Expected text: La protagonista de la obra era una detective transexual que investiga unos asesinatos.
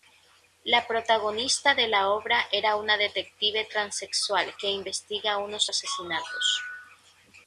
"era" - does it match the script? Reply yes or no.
yes